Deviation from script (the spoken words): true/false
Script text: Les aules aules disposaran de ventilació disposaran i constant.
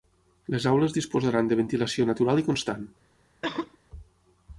true